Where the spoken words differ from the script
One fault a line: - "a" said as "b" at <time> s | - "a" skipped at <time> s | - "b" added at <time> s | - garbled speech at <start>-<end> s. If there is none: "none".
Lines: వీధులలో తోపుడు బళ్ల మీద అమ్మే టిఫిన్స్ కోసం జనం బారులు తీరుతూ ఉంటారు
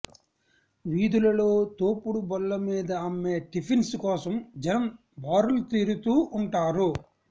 none